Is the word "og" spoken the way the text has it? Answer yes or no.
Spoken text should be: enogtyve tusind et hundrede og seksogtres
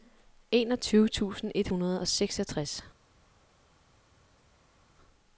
yes